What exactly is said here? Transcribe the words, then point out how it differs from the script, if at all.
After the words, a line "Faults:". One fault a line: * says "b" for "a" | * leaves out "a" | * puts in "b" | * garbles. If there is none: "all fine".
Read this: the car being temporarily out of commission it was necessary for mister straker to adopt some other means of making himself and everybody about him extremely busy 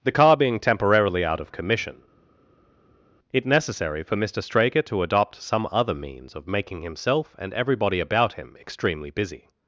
the car being temporarily out of commission it necessary for mister straker to adopt some other means of making himself and everybody about him extremely busy
Faults:
* leaves out "was"